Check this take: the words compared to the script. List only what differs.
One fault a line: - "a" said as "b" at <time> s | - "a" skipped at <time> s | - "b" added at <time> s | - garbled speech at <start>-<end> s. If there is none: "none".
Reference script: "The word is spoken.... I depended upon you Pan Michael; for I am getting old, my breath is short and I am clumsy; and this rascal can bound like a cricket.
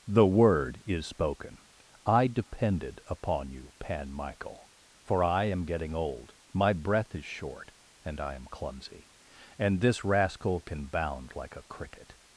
none